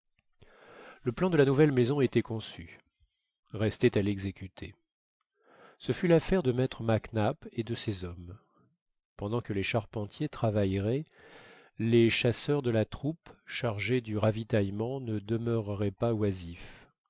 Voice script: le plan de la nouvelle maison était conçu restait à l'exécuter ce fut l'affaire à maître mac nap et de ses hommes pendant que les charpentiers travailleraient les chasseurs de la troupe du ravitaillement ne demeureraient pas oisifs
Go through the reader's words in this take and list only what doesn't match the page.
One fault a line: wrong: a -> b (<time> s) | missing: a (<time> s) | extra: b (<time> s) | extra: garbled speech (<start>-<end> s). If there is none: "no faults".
wrong: à -> de (6.4 s)
extra: chargés (13.4 s)